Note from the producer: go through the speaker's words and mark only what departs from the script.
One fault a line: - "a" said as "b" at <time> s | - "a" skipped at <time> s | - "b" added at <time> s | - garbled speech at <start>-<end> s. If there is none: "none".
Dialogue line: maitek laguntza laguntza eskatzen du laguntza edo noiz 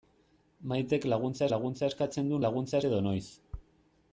none